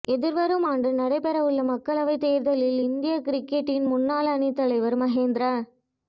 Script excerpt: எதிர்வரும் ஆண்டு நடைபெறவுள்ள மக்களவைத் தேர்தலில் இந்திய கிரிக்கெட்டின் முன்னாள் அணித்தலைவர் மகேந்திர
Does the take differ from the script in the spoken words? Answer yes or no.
no